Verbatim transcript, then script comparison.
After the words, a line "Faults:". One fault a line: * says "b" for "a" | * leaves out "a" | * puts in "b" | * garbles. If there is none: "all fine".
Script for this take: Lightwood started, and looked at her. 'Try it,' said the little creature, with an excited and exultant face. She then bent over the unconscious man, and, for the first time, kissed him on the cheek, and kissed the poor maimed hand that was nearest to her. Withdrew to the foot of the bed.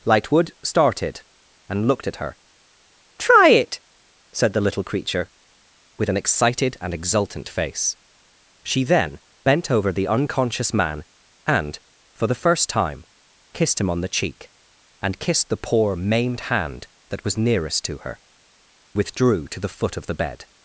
Lightwood started, and looked at her. 'Try it,' said the little creature, with an excited and exultant face. She then bent over the unconscious man, and, for the first time, kissed him on the cheek, and kissed the poor maimed hand that was nearest to her. Withdrew to the foot of the bed.
Faults:
all fine